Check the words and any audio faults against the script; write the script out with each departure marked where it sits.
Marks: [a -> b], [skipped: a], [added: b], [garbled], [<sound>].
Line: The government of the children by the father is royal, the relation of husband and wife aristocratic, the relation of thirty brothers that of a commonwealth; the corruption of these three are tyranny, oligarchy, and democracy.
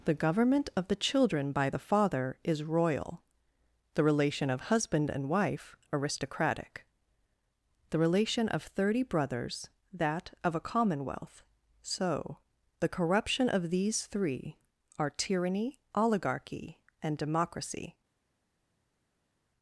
The government of the children by the father is royal, the relation of husband and wife aristocratic, the relation of thirty brothers that of a commonwealth; [added: so] the corruption of these three are tyranny, oligarchy, and democracy.